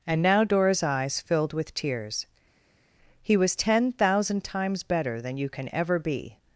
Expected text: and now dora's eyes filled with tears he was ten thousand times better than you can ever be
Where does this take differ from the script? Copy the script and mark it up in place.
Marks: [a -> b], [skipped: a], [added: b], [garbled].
and now dora's eyes filled with tears he was ten thousand times better than you can ever be